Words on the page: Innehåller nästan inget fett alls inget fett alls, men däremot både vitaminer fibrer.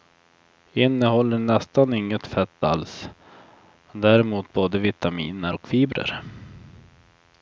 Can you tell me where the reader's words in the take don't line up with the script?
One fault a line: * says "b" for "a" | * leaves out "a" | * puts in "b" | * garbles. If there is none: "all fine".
* leaves out "inget fett alls"
* puts in "och"